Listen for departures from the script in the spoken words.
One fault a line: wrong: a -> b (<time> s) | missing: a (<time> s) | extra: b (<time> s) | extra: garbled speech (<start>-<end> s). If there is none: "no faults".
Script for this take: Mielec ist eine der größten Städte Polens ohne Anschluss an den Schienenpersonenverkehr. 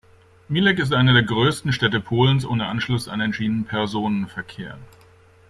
no faults